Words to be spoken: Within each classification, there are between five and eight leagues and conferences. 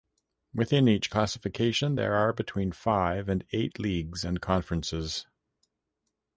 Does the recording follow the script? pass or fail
pass